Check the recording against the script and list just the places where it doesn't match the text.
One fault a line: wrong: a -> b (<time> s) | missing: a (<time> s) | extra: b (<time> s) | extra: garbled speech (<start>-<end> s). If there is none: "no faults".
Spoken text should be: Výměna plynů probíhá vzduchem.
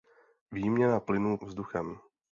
missing: probíhá (1.4 s)